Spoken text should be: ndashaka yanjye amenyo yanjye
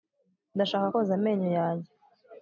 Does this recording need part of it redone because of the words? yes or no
yes